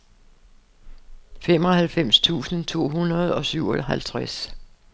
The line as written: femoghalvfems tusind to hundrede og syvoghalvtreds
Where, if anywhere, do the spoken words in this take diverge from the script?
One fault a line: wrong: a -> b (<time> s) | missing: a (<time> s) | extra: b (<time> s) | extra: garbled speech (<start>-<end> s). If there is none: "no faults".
no faults